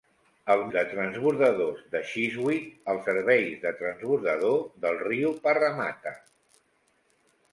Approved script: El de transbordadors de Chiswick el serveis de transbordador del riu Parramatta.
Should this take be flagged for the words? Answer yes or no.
no